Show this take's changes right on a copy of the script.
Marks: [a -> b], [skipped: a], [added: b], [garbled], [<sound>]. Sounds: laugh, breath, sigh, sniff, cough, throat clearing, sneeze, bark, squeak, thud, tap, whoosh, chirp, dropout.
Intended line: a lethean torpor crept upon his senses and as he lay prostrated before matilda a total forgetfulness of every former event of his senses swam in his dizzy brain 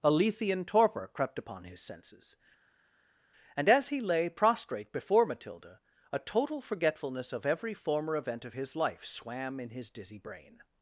a lethean torpor crept upon his senses and as he lay [prostrated -> prostrate] before matilda a total forgetfulness of every former event of his [senses -> life] swam in his dizzy brain